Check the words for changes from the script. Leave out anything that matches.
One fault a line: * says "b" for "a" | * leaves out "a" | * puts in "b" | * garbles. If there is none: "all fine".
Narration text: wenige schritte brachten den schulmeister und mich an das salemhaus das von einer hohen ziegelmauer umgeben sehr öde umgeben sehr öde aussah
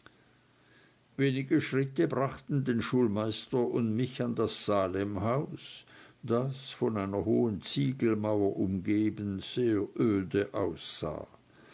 * leaves out "umgeben sehr öde"